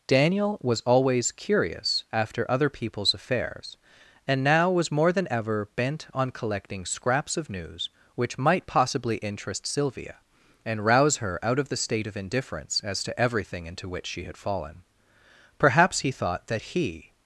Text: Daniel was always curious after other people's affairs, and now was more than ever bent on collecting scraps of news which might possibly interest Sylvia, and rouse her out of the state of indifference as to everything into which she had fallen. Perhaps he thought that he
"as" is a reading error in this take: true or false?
false